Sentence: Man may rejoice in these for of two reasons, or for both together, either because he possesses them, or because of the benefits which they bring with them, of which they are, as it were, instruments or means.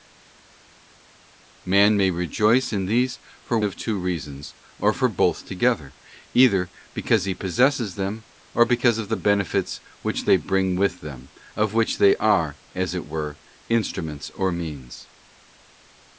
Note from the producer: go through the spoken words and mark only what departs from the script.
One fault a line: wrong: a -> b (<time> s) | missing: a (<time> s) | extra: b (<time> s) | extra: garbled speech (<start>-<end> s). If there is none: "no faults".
no faults